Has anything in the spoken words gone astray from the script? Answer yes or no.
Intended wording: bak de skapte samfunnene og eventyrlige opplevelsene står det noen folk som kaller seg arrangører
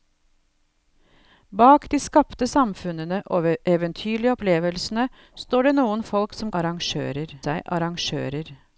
yes